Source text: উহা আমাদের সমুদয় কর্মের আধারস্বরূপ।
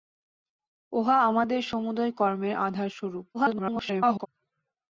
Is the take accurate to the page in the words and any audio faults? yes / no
no